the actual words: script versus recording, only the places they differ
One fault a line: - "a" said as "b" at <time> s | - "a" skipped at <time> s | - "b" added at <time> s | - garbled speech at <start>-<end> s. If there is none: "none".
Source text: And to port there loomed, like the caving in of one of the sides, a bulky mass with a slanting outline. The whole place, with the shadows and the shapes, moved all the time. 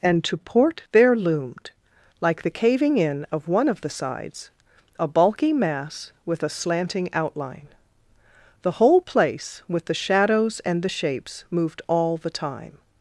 none